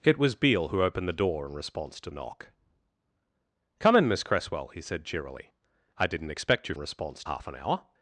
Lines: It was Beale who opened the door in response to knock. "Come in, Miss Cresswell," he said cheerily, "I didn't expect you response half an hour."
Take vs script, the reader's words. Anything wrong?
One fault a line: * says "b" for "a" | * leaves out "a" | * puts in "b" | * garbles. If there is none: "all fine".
all fine